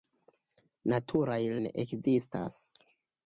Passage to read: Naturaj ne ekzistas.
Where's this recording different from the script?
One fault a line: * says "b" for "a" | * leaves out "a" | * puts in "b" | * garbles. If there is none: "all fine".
all fine